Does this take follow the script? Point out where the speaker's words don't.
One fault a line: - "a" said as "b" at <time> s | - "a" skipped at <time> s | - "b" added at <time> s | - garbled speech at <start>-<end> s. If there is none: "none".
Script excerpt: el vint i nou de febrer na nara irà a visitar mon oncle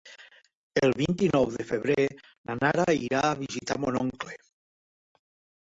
none